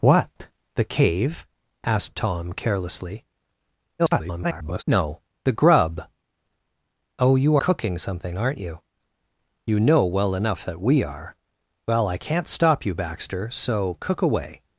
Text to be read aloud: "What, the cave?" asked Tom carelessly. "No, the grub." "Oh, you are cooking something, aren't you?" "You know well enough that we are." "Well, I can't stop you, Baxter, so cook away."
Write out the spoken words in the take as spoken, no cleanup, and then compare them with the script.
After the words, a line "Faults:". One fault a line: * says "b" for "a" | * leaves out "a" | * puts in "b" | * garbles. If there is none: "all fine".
"What, the cave?" asked Tom carelessly. [garbled] "No, the grub." "Oh, you cooking something, aren't you?" "You know well enough that we are." "Well, I can't stop you, Baxter, so cook away."
Faults:
* garbles
* leaves out "are"